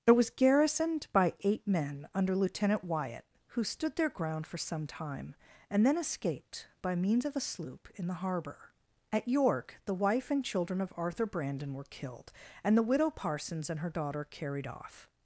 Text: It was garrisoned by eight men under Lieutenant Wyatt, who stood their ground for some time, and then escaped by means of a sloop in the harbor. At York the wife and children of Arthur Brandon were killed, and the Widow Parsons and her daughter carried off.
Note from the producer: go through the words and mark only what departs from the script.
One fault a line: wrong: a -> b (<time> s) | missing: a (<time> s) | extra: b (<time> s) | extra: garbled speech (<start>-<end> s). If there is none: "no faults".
no faults